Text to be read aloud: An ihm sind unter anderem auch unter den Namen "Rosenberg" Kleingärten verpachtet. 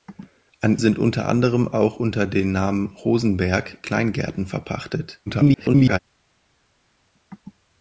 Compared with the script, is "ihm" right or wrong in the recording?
wrong